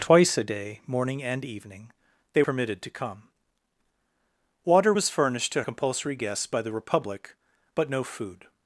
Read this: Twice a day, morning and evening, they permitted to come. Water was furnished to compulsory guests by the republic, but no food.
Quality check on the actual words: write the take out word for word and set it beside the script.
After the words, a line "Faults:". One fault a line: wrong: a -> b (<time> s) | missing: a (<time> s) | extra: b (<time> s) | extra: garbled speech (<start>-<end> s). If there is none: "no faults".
Twice a day, morning and evening, they permitted to come. Water was furnished to compulsory guests by the republic, but no food.
Faults:
no faults